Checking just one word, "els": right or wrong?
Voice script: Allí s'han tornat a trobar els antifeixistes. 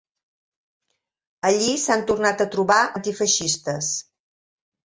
wrong